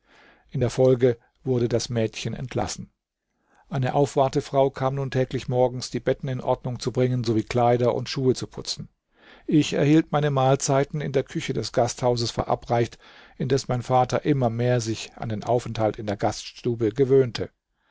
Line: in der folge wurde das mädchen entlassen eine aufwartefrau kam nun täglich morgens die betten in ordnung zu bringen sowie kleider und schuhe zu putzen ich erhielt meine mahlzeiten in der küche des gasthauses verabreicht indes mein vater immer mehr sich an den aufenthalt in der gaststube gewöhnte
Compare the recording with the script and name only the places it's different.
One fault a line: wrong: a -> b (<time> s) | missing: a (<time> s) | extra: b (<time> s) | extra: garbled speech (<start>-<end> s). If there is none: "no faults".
no faults